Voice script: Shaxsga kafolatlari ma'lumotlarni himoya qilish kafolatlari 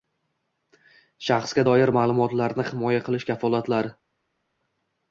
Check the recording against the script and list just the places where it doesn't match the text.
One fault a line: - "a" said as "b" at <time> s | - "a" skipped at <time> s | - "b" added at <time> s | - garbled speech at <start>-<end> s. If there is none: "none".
- "kafolatlari" said as "doir" at 1.7 s